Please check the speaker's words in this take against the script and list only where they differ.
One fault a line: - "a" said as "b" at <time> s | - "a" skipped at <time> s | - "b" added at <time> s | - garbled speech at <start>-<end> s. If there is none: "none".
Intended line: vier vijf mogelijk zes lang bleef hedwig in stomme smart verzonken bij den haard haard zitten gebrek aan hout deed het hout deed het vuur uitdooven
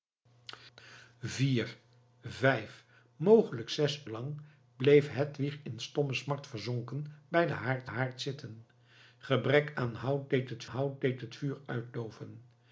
none